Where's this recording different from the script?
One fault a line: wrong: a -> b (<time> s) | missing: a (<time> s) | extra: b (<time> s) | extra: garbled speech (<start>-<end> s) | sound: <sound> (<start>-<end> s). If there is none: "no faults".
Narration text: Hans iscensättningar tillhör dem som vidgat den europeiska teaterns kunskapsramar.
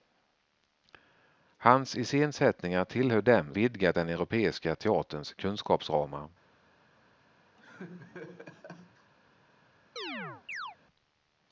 missing: som (3.5 s)
sound: laugh (7.6-9.1 s)
sound: chirp (10.0-10.8 s)